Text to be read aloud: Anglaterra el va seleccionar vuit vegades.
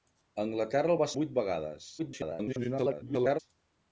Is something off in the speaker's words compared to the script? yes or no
yes